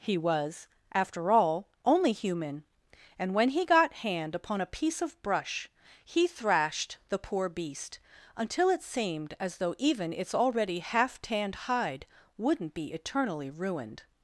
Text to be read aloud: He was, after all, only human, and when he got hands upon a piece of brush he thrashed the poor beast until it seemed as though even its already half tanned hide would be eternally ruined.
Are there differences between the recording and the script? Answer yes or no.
yes